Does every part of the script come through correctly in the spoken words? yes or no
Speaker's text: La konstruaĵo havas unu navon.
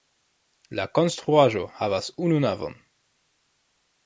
yes